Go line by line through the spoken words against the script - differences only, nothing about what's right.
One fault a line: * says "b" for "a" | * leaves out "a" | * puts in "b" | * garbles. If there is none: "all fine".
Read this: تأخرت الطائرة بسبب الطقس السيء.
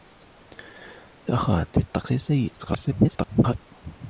* leaves out "الطائرة بسبب"
* garbles